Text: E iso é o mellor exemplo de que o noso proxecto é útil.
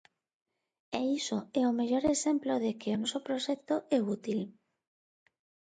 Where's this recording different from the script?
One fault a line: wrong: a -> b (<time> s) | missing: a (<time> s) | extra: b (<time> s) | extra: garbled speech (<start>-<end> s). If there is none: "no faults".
no faults